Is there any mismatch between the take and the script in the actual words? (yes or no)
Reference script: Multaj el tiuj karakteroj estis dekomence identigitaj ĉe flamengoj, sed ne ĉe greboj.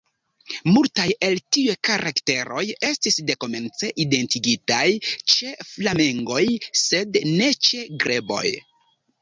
no